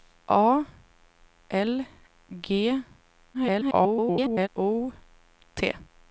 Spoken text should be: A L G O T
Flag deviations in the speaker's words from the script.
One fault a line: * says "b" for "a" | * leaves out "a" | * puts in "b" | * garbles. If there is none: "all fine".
* garbles